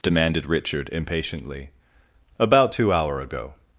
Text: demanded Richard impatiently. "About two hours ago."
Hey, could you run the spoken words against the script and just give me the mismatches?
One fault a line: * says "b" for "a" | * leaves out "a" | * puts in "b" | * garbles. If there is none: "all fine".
* says "hour" for "hours"